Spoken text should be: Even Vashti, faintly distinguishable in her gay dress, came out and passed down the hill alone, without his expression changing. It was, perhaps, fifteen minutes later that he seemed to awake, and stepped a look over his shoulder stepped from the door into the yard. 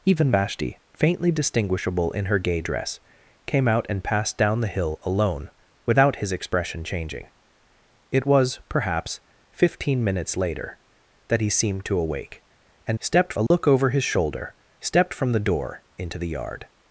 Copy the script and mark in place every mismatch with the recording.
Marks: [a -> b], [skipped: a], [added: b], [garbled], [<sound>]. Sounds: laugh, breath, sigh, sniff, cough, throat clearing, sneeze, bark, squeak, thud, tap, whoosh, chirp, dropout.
Even Vashti, faintly distinguishable in her gay dress, came out and passed down the hill alone, without his expression changing. It was, perhaps, fifteen minutes later that he seemed to awake, and stepped a look [dropout] over his shoulder stepped from the door into the yard.